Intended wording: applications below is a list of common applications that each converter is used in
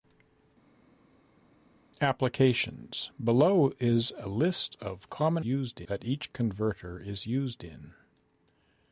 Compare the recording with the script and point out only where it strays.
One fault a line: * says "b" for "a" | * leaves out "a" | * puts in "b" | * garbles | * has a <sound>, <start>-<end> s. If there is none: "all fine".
* says "used" for "applications"